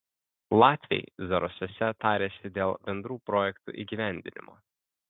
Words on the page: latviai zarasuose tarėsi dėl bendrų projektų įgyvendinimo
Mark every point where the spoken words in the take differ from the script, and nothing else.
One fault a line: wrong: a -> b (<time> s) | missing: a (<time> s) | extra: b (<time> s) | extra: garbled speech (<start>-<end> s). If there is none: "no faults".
no faults